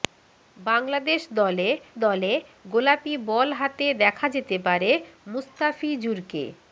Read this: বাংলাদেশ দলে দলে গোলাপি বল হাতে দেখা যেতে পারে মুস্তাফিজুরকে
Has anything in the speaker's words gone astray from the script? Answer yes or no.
no